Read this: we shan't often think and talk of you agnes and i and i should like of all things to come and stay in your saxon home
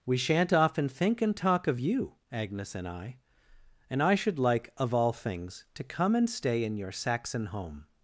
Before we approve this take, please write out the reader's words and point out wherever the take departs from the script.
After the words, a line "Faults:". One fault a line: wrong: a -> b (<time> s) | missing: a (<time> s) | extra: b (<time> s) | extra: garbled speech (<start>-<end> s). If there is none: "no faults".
we shan't often think and talk of you agnes and i and i should like of all things to come and stay in your saxon home
Faults:
no faults